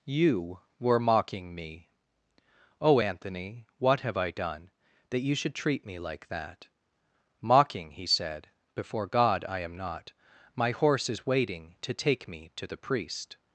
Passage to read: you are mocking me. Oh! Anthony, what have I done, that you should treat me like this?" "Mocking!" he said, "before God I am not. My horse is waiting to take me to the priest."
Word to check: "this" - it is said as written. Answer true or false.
false